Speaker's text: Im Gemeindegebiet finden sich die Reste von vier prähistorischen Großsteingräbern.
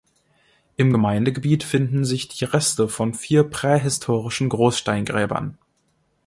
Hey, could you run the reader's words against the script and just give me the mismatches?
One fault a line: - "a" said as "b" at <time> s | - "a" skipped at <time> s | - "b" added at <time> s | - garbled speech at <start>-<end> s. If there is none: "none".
none